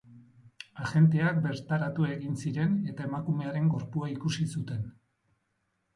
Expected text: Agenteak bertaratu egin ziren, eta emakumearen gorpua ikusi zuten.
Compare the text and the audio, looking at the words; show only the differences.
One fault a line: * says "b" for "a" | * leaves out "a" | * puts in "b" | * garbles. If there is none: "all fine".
all fine